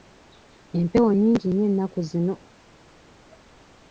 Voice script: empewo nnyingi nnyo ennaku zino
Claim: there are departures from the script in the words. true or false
false